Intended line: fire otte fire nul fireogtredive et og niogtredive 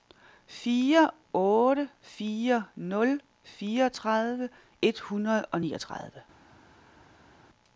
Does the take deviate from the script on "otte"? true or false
false